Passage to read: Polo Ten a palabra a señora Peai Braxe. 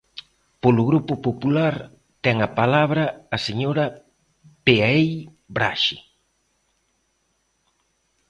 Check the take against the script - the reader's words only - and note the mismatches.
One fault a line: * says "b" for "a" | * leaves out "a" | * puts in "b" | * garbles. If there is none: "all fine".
* puts in "Grupo Popular"